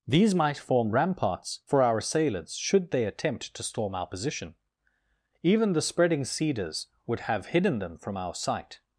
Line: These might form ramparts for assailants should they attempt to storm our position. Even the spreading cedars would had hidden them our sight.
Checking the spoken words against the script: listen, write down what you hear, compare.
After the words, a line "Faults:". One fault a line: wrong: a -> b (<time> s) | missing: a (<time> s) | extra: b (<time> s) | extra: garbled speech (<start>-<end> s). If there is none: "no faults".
These might form ramparts for our assailants should they attempt to storm our position. Even the spreading cedars would have hidden them from our sight.
Faults:
extra: our (1.8 s)
wrong: had -> have (7.2 s)
extra: from (8.0 s)